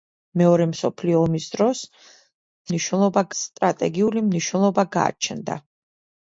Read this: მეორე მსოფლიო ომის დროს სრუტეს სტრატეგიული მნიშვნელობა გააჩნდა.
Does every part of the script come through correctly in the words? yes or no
no